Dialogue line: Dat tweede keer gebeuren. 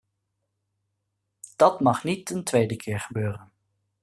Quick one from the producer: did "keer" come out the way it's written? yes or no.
yes